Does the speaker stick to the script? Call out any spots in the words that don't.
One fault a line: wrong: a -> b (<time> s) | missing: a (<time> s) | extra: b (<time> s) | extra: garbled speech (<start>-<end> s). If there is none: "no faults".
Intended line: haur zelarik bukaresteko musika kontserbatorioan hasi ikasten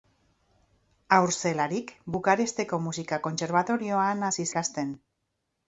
no faults